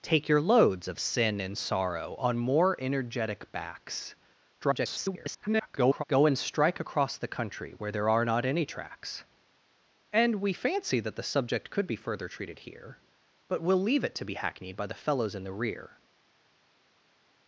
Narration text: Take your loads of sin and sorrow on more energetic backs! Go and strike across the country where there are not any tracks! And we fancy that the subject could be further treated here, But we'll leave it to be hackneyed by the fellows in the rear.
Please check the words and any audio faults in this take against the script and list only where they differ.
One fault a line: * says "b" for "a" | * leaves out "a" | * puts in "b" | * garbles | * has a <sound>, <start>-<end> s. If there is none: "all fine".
* garbles